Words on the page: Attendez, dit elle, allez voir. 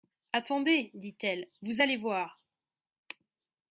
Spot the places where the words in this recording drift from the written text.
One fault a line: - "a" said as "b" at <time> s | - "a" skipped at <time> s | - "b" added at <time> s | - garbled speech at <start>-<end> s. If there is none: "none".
- "vous" added at 1.6 s